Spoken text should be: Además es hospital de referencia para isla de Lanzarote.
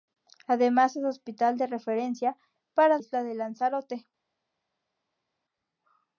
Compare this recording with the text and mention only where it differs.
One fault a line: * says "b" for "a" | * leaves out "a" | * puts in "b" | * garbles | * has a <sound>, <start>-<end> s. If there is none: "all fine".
all fine